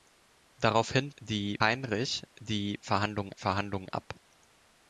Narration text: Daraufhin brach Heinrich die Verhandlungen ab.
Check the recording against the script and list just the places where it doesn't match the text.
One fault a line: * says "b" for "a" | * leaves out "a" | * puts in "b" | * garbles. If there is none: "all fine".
* says "die" for "brach"
* puts in "Verhandlungen"